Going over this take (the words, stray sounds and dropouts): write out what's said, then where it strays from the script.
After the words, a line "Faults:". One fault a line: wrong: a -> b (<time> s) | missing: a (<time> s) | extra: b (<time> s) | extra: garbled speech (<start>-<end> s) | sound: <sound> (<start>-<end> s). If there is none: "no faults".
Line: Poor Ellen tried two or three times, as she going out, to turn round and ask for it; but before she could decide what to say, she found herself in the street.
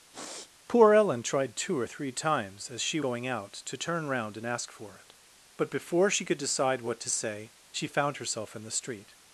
Poor Ellen tried two or three times, as she going out, to turn round and ask for it; but before she could decide what to say, she found herself in the street.
Faults:
sound: sniff (0.1-0.5 s)